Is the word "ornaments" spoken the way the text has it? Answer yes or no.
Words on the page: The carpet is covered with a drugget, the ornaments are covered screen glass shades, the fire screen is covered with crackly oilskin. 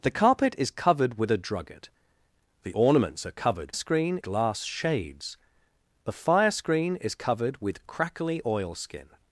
yes